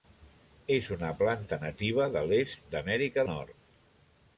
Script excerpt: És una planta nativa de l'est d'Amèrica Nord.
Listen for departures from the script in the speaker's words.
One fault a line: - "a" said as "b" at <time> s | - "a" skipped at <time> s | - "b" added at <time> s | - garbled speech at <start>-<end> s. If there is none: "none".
none